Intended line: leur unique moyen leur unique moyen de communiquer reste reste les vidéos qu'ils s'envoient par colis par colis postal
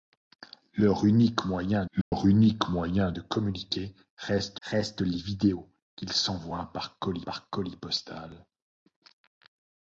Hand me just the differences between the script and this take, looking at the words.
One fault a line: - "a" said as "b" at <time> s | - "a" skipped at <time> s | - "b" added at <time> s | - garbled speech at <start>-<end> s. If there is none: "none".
none